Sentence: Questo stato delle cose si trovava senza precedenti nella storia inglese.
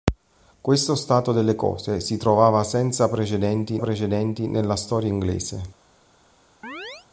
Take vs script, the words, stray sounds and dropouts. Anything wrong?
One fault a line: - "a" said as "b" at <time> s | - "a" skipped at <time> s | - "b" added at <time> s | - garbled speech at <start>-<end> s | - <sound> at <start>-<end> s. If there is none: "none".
- "precedenti" added at 3.8 s
- chirp at 6.6-7.1 s